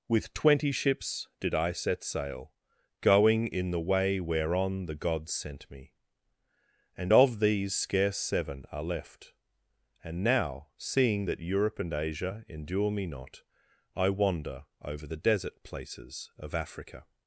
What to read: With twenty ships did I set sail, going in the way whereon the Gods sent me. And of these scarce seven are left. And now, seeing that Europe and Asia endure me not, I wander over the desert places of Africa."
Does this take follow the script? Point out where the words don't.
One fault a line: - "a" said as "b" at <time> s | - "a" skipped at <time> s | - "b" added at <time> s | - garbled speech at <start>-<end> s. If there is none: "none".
none